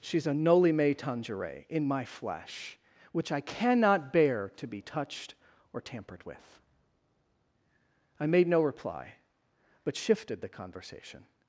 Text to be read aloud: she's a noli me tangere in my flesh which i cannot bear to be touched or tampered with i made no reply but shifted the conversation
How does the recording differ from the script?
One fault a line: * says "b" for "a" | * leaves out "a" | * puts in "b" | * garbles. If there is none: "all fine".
all fine